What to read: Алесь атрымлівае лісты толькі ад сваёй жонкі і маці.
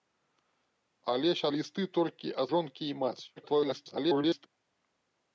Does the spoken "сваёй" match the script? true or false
false